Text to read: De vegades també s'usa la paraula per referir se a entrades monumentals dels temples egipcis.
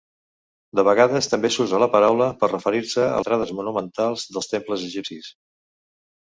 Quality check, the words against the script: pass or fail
pass